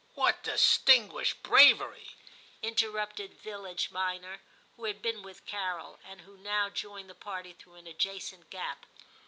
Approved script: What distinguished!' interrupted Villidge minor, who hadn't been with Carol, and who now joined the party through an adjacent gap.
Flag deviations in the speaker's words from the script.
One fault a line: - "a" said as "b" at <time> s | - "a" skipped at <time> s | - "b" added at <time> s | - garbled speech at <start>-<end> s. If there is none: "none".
- "bravery" added at 1.4 s
- "hadn't" said as "had" at 4.8 s